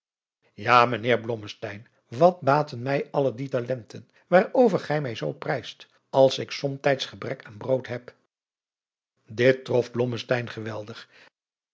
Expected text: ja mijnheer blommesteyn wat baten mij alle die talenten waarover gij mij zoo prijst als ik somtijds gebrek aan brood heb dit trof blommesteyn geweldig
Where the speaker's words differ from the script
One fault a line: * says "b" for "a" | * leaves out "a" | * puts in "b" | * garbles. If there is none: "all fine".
all fine